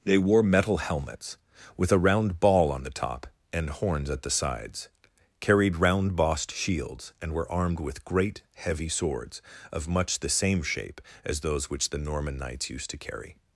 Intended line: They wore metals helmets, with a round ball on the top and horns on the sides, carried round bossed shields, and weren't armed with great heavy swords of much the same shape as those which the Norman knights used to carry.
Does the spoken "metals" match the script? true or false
false